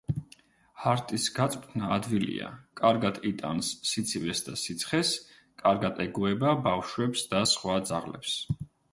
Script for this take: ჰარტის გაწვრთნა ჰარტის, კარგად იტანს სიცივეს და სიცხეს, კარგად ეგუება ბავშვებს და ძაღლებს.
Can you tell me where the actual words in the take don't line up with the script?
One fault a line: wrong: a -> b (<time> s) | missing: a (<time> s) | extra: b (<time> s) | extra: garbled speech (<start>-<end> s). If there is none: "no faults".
wrong: ჰარტის -> ადვილია (1.9 s)
extra: სხვა (7.5 s)